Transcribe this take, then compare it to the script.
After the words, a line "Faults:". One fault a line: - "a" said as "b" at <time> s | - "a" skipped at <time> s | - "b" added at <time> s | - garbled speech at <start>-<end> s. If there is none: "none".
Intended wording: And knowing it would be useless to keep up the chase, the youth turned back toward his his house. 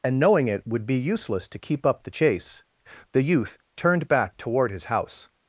And knowing it would be useless to keep up the chase, the youth turned back toward his house.
Faults:
- "his" skipped at 4.9 s